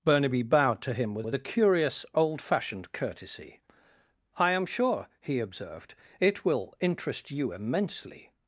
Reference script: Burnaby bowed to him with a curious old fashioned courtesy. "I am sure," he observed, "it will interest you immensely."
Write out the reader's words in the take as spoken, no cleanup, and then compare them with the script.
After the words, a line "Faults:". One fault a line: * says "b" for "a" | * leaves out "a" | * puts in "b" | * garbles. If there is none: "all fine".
Burnaby bowed to him with with a curious old fashioned courtesy. "I am sure," he observed, "it will interest you immensely."
Faults:
* puts in "with"